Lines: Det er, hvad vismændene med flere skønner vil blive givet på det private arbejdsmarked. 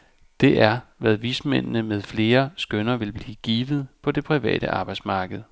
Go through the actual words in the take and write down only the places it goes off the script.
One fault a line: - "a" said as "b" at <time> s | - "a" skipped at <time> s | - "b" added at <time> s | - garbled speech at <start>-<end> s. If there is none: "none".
none